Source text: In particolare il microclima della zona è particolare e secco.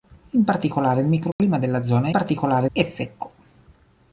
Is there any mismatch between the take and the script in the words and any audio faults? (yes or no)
yes